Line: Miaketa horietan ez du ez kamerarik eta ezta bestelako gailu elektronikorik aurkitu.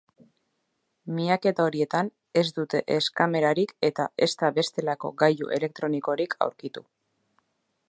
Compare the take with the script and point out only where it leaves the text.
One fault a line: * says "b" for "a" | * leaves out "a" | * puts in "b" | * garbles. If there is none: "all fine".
* says "dute" for "du"